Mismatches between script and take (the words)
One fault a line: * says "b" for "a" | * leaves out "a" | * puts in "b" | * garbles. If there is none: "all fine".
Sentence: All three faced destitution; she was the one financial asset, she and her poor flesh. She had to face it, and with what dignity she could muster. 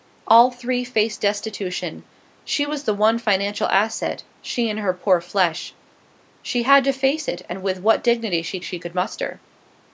* puts in "she"